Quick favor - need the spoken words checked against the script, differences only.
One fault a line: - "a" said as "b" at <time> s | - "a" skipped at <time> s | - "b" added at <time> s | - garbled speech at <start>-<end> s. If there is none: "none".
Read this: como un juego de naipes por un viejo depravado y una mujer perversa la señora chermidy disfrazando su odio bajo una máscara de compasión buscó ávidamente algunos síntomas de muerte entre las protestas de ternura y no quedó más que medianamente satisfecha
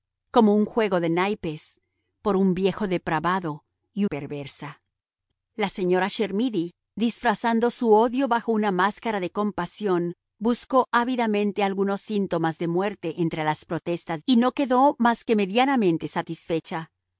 - "una mujer" skipped at 4.0 s
- "de ternura" skipped at 14.2 s